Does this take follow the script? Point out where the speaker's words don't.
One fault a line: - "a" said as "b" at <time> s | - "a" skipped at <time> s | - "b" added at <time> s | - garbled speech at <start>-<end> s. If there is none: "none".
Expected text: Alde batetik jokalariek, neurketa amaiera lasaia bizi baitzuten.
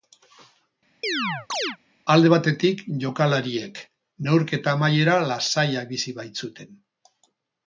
none